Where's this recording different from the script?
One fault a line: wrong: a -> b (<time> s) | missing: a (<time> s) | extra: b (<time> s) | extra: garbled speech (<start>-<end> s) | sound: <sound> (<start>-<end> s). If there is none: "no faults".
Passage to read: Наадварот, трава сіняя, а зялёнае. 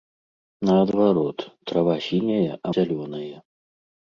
no faults